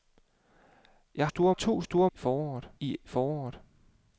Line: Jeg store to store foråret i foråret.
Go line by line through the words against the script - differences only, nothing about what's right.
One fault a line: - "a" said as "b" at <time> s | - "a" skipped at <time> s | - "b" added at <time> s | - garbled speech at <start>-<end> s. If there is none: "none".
none